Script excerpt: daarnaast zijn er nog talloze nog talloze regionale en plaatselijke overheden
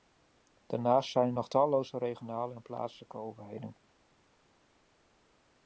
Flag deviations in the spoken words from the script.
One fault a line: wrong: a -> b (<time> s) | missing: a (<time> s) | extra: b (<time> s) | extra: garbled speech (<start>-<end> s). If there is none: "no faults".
missing: nog talloze (2.0 s)